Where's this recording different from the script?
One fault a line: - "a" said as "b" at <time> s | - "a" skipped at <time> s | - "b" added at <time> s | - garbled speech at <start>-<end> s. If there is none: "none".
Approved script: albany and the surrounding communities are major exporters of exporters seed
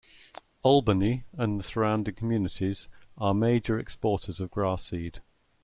- "exporters" said as "grass" at 4.5 s